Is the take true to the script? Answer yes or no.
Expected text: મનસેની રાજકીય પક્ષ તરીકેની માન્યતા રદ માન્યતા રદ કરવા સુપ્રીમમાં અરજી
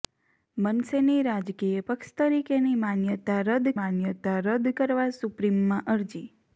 yes